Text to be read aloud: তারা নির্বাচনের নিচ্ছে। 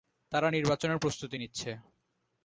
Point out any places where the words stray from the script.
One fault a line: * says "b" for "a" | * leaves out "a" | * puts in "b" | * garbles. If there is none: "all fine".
* puts in "প্রস্তুতি"